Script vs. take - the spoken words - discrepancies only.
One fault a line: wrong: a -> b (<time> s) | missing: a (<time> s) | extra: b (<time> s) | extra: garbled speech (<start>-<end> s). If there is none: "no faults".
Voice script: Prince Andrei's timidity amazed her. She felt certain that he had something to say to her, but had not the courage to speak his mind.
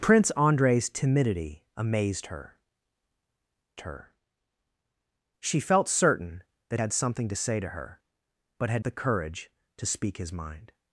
extra: her (3.8 s)
missing: he (6.8 s)
missing: not (8.8 s)